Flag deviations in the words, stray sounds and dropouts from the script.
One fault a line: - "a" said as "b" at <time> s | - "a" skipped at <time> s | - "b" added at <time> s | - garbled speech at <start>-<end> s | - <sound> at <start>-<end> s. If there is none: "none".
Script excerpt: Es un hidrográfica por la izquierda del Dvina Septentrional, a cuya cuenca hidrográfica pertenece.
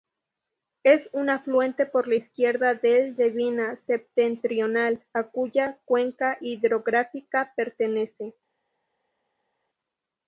- "hidrográfica" said as "afluente" at 1.3 s